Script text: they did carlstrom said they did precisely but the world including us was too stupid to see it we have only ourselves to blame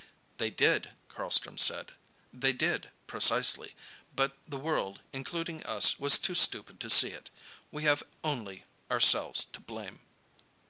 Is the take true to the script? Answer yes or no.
yes